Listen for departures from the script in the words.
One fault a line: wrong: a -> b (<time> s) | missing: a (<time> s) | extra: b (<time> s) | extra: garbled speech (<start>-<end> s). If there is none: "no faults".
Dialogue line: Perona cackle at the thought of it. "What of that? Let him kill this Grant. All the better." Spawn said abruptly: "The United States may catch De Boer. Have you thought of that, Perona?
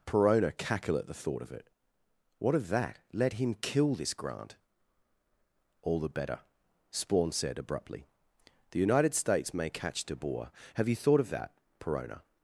no faults